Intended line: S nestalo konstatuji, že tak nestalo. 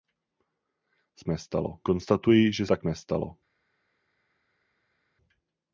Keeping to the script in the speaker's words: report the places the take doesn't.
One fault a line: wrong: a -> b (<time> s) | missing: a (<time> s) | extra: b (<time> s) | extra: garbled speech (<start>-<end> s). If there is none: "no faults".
no faults